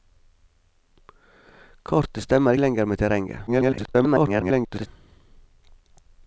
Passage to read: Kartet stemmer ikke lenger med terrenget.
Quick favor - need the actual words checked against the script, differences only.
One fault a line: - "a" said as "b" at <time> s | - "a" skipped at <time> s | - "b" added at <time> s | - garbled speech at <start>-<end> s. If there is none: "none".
- "ikke" skipped at 2.5 s
- garbled speech at 3.5-4.9 s